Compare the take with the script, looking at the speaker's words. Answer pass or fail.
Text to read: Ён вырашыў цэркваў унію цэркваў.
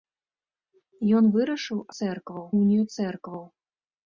pass